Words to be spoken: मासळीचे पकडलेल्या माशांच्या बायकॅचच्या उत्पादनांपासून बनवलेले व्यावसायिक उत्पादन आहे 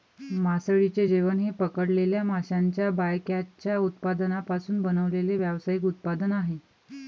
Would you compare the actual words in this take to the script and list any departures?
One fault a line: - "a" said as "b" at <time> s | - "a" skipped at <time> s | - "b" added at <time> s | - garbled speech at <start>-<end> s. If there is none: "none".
- "जेवण हे" added at 1.1 s